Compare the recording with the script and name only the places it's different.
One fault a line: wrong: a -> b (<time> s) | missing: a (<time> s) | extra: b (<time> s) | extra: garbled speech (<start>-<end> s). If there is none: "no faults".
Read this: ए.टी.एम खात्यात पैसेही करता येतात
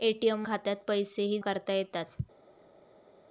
no faults